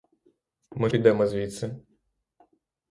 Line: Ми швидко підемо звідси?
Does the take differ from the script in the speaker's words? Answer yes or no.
yes